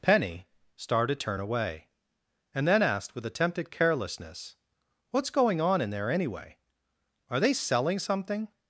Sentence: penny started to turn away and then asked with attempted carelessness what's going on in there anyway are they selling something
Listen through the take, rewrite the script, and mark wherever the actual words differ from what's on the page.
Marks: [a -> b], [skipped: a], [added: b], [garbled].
penny started [skipped: to] turn away and then asked with attempted carelessness what's going on in there anyway are they selling something